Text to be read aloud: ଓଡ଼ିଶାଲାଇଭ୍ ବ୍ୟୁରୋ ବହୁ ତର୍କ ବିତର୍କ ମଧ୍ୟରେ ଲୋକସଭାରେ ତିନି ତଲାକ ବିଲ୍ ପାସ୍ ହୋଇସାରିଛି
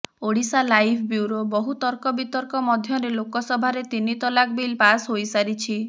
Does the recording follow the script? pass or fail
pass